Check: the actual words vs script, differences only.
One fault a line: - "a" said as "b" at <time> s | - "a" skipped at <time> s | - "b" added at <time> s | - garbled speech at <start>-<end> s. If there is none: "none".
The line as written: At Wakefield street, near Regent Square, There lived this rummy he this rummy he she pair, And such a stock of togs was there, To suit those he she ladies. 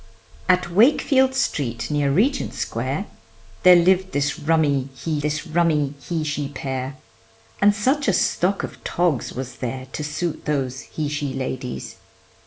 none